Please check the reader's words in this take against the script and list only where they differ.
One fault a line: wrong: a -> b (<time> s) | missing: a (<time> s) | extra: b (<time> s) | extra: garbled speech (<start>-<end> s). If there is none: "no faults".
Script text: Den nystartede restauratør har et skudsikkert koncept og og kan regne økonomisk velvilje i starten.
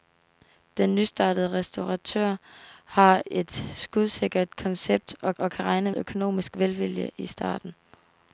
no faults